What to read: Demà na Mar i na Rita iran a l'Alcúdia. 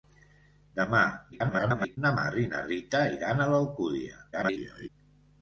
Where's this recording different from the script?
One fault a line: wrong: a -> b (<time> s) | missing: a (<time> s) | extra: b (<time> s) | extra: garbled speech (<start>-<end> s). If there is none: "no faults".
extra: garbled speech (1.3-2.0 s)
extra: garbled speech (4.3-4.9 s)